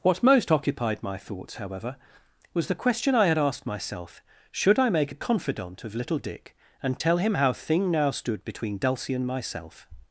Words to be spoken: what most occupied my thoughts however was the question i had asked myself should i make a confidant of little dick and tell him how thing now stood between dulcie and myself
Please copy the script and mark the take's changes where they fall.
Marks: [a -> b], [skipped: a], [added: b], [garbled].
what most occupied my thoughts however was the question i had asked myself should i make a confidant of little dick and tell him how thing now stood between dulcie and myself